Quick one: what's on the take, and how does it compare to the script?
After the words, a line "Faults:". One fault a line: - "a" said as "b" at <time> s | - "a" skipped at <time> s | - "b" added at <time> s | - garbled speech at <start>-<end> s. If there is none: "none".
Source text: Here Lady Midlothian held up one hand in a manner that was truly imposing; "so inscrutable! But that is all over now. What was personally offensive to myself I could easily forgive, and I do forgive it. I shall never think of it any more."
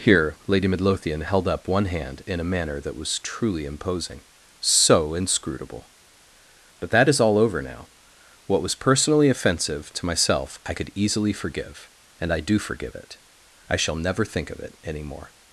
Here Lady Midlothian held up one hand in a manner that was truly imposing; "so inscrutable! But that is all over now. What was personally offensive to myself I could easily forgive, and I do forgive it. I shall never think of it any more."
Faults:
none